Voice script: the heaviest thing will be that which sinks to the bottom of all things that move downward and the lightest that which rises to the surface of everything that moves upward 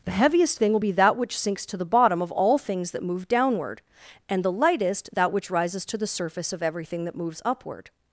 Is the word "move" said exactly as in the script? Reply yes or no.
yes